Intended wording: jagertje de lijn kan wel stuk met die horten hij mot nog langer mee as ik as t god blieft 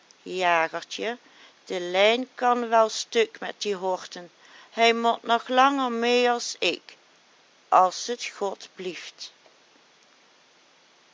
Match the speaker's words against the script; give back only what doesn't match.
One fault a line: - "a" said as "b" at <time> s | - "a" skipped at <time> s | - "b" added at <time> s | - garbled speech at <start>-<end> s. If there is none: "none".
none